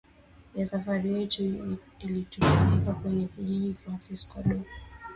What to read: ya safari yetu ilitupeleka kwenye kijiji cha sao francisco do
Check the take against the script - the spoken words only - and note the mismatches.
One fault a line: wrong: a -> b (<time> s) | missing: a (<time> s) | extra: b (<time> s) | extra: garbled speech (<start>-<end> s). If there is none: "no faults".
missing: cha sao (3.7 s)